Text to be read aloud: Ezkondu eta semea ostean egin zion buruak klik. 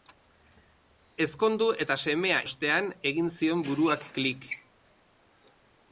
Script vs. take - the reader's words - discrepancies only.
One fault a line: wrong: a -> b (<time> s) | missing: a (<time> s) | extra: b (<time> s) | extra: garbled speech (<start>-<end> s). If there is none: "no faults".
no faults